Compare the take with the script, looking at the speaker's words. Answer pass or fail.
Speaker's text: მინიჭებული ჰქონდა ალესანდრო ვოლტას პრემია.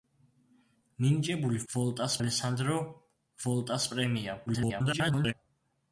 fail